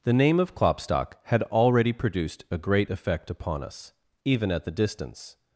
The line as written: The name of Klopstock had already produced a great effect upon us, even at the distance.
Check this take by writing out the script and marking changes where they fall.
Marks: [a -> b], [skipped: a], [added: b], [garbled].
The name of Klopstock had already produced a great effect upon us, even at the distance.